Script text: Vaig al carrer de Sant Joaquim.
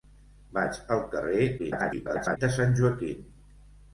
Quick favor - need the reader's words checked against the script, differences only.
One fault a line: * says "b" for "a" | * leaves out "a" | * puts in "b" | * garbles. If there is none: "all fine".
* garbles